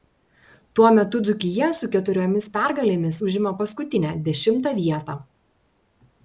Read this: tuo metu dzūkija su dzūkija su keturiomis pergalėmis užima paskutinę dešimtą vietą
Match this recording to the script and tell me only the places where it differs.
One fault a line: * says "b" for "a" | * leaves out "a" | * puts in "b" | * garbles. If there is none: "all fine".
* leaves out "dzūkija su"